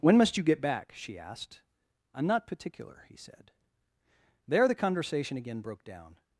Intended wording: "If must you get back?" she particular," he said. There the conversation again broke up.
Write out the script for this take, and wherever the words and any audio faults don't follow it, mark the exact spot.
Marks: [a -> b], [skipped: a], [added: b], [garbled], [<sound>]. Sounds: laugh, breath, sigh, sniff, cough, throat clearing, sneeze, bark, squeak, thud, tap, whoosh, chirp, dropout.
["If -> When] must you get back?" she [added: asked I'm not] particular," he said. There the conversation again broke [up. -> down]